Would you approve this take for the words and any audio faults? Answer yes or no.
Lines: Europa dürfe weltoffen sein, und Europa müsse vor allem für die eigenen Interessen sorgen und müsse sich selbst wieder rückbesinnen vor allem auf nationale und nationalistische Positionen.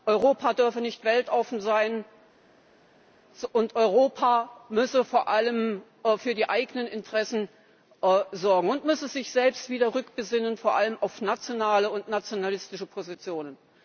no